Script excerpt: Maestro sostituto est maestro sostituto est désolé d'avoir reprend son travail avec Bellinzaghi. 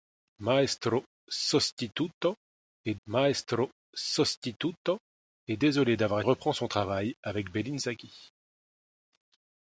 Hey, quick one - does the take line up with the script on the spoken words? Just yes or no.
yes